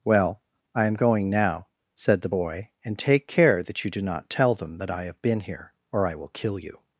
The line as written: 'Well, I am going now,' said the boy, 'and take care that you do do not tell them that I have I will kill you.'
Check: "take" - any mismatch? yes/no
no